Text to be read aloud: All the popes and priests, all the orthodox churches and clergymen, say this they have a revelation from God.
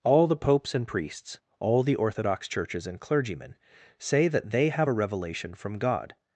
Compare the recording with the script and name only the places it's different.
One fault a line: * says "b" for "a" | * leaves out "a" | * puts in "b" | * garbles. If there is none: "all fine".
* says "that" for "this"